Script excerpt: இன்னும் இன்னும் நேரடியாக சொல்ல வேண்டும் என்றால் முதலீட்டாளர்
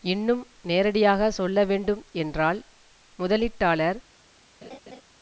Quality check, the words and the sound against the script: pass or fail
fail